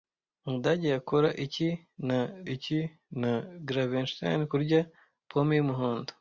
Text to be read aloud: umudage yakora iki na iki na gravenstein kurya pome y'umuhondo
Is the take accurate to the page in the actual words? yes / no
yes